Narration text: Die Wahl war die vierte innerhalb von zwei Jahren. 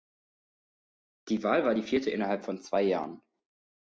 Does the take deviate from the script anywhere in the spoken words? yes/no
no